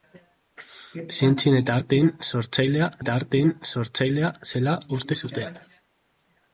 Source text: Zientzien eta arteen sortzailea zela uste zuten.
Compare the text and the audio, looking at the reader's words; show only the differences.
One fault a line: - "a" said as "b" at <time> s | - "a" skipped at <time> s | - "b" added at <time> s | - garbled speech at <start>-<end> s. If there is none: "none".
- "eta arteen sortzailea" added at 3.0 s